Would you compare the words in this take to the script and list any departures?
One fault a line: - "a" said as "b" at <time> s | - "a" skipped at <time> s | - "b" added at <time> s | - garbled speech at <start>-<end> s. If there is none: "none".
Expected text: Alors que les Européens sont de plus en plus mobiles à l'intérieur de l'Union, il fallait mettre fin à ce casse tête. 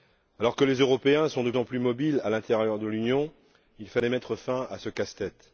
- "plus" skipped at 1.5 s